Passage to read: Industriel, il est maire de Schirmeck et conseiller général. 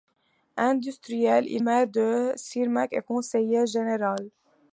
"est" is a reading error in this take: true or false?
true